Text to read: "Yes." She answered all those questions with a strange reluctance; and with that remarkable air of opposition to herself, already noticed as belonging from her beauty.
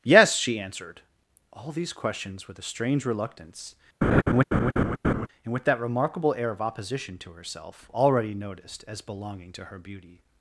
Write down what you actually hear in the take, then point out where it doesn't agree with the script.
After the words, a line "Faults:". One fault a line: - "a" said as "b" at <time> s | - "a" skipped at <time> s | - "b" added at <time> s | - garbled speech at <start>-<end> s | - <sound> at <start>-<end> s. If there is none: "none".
"Yes." She answered all these questions with a strange reluctance; and with that remarkable air of opposition to herself, already noticed as belonging to her beauty.
Faults:
- "those" said as "these" at 1.7 s
- laugh at 4.0-5.3 s
- "from" said as "to" at 9.5 s